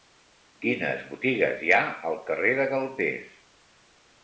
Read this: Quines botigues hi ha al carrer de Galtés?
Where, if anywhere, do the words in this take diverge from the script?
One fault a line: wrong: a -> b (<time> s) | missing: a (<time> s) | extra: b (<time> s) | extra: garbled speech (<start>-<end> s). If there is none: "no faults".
no faults